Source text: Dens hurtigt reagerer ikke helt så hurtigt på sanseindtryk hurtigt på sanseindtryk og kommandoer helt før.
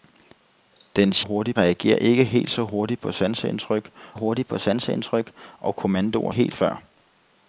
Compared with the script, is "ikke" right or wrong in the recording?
right